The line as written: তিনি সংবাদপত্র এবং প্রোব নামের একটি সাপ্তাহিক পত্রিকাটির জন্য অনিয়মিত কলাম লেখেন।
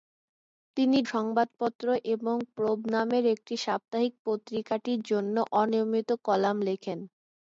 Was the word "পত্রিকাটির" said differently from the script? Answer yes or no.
no